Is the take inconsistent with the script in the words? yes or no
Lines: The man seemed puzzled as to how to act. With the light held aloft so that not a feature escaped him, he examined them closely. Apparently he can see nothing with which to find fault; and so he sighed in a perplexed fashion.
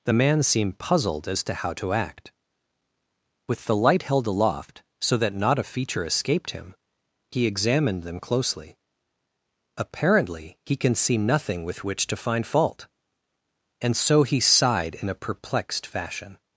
no